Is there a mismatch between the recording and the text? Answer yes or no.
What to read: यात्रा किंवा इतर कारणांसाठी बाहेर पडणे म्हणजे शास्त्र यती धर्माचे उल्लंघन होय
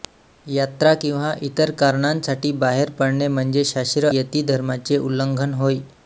no